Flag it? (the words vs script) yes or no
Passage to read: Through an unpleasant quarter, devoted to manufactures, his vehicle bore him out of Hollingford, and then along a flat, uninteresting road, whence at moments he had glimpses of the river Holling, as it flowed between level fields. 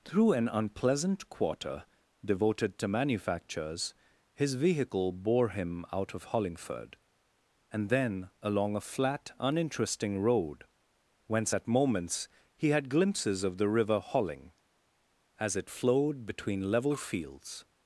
no